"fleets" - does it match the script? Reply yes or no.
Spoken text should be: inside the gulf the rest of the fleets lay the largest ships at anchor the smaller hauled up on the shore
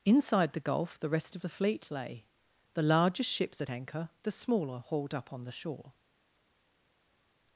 no